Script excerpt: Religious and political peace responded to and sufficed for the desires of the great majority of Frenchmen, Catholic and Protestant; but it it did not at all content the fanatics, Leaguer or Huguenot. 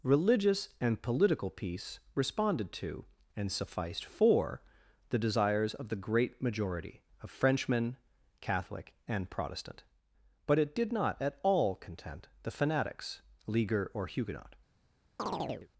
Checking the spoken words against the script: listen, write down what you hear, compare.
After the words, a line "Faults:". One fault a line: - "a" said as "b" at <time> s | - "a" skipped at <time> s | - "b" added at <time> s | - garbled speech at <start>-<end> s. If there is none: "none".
Religious and political peace responded to and sufficed for the desires of the great majority of Frenchmen, Catholic and Protestant; but it did not at all content the fanatics, Leaguer or Huguenot.
Faults:
- "it" skipped at 10.7 s